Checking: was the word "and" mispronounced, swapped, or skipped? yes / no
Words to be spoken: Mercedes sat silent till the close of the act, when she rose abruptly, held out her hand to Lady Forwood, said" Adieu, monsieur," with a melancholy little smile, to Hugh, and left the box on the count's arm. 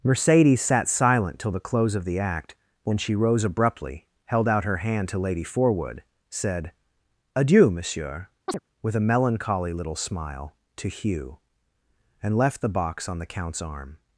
no